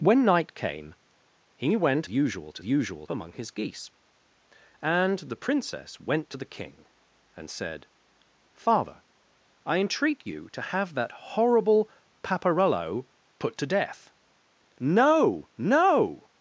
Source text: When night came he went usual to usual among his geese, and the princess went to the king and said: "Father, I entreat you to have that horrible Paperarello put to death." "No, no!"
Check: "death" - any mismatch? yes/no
no